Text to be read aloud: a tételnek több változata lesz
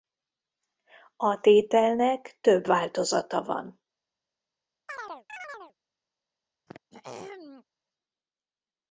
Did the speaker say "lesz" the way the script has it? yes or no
no